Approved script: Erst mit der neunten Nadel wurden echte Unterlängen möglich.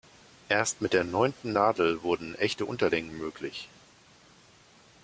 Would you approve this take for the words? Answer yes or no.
yes